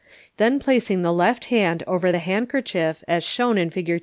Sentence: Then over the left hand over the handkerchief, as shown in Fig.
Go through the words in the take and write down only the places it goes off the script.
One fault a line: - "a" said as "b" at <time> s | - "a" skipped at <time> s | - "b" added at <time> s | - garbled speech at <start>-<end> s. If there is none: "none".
- "over" said as "placing" at 0.6 s